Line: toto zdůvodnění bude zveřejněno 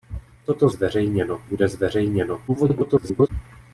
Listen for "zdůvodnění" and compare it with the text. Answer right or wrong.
wrong